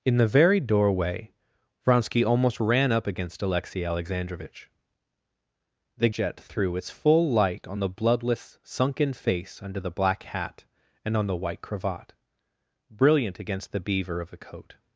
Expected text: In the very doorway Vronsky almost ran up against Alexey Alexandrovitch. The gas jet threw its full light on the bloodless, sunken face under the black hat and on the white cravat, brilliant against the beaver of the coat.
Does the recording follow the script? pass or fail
fail